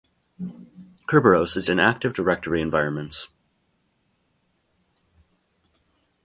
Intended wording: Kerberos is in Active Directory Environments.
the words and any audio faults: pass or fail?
pass